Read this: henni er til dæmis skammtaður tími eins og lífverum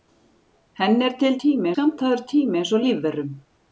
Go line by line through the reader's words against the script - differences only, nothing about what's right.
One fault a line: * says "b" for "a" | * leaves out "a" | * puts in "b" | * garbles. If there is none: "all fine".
* says "tími" for "dæmis"